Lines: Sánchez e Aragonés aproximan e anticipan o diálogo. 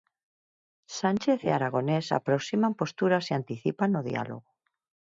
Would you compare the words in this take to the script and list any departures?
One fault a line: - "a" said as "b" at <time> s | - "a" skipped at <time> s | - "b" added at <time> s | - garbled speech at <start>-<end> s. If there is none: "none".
- "posturas" added at 2.8 s